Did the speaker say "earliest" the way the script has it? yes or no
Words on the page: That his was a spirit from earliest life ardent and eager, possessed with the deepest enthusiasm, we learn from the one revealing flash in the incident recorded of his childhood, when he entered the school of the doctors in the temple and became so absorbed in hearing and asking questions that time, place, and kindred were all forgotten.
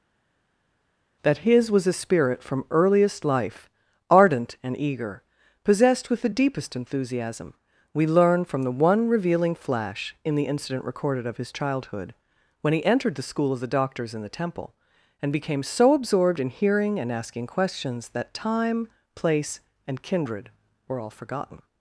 yes